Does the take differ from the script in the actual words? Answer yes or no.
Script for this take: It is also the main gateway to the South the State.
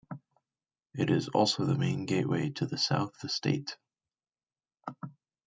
no